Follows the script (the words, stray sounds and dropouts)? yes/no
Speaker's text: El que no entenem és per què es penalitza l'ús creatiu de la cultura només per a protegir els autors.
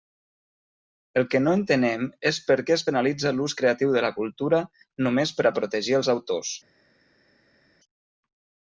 yes